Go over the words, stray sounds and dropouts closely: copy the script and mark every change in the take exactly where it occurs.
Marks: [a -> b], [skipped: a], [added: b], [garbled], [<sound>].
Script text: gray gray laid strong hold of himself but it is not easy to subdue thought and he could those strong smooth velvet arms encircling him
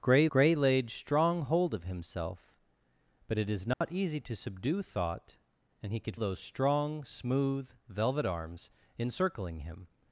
gray gray laid strong hold of himself but it is not [dropout] easy to subdue thought and he could those strong smooth velvet arms encircling him